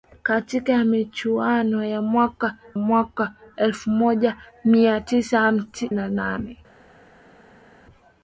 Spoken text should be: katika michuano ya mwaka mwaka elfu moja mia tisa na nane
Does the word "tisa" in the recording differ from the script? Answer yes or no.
no